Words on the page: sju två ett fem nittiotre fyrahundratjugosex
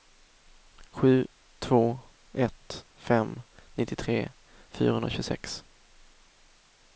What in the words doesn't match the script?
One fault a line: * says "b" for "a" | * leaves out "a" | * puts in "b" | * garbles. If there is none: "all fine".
all fine